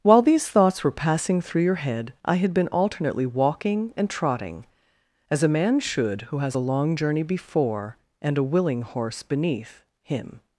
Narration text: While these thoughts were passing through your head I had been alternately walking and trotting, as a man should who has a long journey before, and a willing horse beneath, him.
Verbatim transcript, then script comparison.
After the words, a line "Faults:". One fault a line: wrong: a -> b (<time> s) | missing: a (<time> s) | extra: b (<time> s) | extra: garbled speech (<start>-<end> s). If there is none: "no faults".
While these thoughts were passing through your head I had been alternately walking and trotting, as a man should who has a long journey before, and a willing horse beneath, him.
Faults:
no faults